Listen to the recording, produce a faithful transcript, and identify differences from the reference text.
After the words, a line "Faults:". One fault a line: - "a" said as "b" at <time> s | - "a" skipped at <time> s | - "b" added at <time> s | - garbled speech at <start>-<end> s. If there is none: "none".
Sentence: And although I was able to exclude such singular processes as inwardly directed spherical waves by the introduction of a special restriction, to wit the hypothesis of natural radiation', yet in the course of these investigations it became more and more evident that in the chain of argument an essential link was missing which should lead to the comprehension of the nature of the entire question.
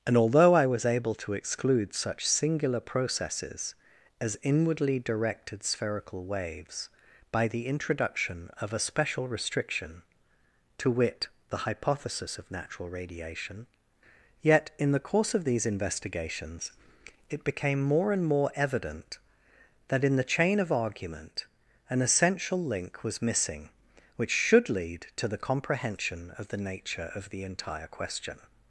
And although I was able to exclude such singular processes as inwardly directed spherical waves by the introduction of a special restriction, to wit the hypothesis of natural radiation', yet in the course of these investigations it became more and more evident that in the chain of argument an essential link was missing which should lead to the comprehension of the nature of the entire question.
Faults:
none